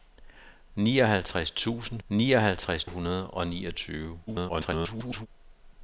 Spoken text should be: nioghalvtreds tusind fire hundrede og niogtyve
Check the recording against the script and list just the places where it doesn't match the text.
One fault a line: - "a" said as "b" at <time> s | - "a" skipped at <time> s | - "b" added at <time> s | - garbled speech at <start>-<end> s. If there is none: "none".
- "fire" said as "nioghalvtreds" at 2.1 s
- garbled speech at 4.3-5.3 s